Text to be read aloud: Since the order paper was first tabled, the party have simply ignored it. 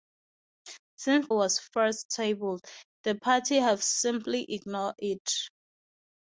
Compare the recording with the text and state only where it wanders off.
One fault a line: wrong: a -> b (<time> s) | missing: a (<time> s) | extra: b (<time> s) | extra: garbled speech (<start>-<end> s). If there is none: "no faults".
missing: the order paper (1.3 s)